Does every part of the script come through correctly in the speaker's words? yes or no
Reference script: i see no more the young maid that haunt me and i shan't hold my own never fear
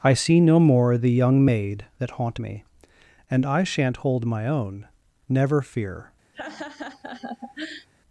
yes